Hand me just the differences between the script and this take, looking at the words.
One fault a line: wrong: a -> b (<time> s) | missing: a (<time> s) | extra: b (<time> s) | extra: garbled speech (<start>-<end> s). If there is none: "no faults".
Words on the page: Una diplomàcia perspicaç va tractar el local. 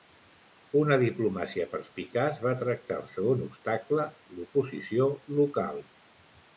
extra: segon obstacle l'oposició (3.1 s)